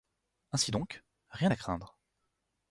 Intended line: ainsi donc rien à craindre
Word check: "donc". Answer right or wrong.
right